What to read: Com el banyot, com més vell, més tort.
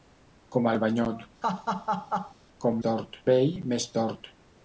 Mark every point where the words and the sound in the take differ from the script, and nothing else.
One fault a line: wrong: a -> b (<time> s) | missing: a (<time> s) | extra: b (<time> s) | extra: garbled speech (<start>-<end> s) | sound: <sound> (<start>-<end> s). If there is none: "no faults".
sound: laugh (1.4-2.3 s)
wrong: més -> tort (2.9 s)